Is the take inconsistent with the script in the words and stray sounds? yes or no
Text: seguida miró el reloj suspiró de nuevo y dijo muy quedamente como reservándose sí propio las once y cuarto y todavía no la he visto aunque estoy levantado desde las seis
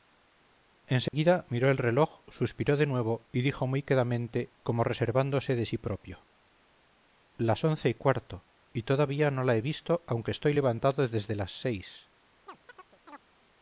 yes